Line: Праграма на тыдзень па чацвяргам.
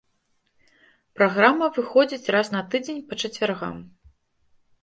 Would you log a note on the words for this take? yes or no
yes